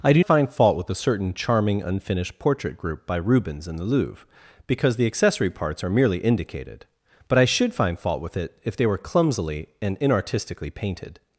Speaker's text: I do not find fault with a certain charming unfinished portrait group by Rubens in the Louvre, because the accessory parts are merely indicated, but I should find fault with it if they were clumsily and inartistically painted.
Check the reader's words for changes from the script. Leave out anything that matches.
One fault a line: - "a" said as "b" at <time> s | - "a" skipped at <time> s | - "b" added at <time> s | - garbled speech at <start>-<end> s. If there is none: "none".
- "not" skipped at 0.2 s